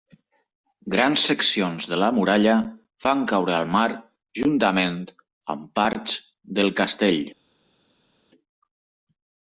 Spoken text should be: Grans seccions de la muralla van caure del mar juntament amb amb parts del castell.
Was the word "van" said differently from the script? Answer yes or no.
no